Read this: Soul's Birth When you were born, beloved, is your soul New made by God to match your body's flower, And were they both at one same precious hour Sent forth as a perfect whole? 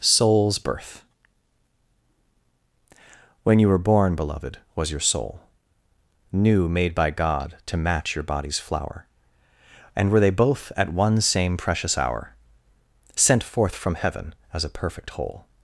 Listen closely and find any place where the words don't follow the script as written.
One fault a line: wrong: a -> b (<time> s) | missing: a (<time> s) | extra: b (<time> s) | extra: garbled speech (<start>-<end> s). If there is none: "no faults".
wrong: is -> was (4.8 s)
extra: from heaven (13.8 s)